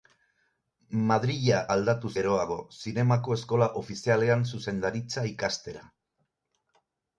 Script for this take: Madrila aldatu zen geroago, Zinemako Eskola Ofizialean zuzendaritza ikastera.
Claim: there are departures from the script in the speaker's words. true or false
true